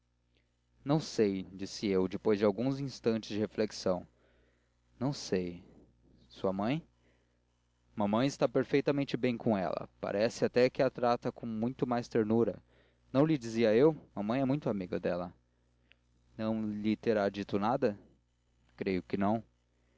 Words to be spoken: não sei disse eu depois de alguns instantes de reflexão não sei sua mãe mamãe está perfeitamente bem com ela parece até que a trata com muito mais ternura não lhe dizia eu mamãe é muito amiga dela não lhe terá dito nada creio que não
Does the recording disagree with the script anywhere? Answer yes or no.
no